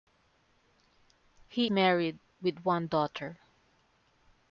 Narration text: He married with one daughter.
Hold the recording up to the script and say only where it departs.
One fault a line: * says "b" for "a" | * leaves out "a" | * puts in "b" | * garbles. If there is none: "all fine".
all fine